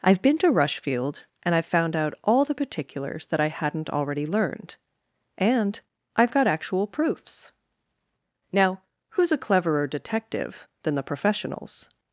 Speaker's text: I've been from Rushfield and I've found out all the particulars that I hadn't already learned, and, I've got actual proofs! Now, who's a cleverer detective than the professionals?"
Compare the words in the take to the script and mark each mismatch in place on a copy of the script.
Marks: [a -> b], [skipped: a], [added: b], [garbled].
I've been [from -> to] Rushfield and I've found out all the particulars that I hadn't already learned, and, I've got actual proofs! Now, who's a cleverer detective than the professionals?"